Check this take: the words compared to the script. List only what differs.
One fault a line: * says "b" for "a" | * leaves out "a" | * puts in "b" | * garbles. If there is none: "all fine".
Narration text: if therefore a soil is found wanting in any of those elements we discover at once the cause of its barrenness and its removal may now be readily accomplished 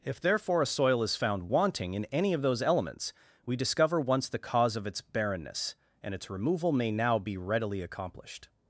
* leaves out "at"